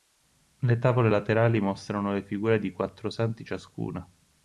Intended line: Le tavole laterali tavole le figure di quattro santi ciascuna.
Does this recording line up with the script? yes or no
no